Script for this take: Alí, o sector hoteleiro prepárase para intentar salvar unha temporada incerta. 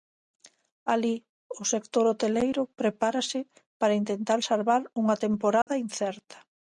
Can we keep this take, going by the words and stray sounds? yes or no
no